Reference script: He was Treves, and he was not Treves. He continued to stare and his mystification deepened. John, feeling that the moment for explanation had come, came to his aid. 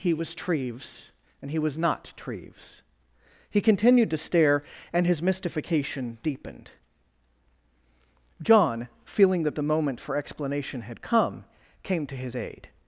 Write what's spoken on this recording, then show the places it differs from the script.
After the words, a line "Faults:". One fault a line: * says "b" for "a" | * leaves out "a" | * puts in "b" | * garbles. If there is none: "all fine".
He was Treves, and he was not Treves. He continued to stare and his mystification deepened. John, feeling that the moment for explanation had come, came to his aid.
Faults:
all fine